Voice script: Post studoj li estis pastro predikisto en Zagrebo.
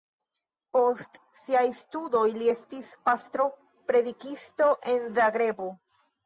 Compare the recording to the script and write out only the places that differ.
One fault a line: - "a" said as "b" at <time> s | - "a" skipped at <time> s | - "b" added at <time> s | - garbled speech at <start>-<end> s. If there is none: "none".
- "siaj" added at 1.4 s